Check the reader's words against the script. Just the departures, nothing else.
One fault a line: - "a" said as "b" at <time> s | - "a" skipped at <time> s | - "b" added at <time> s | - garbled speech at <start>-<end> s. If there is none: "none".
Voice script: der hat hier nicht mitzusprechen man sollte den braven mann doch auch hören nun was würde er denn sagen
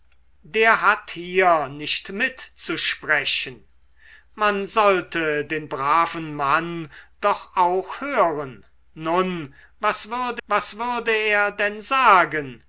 - "was würde" added at 10.5 s